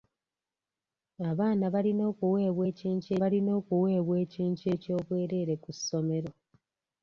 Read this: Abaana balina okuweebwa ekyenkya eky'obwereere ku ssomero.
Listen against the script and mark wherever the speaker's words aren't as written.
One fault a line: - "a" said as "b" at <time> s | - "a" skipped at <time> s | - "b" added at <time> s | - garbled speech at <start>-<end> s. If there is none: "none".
- "balina okuweebwa ekyenkya" added at 3.2 s